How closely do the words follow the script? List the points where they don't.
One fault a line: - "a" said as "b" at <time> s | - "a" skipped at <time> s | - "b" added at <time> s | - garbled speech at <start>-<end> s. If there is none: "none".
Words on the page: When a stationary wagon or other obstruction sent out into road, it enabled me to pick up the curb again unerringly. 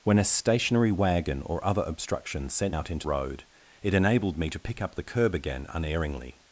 none